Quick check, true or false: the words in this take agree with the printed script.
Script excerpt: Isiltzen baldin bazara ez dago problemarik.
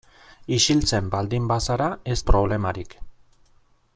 false